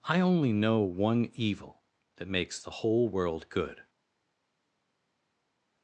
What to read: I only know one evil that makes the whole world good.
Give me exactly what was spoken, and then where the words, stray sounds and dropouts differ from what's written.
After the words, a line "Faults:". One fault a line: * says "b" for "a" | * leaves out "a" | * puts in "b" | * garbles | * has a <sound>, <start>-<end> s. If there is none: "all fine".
I only know one evil that makes the whole world good.
Faults:
all fine